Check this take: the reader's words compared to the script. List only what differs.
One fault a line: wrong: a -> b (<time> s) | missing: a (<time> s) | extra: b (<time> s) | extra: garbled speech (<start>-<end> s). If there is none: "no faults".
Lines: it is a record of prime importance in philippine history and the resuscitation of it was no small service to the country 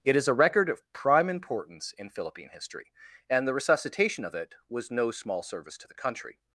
no faults